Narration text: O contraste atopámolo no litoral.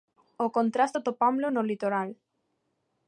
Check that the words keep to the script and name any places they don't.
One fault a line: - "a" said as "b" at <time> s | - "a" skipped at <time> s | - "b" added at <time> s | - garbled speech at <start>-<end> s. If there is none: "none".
none